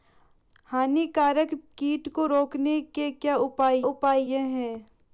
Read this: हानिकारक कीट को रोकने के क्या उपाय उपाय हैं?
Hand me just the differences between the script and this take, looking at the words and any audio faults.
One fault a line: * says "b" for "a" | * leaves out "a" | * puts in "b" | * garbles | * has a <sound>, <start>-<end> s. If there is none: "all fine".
all fine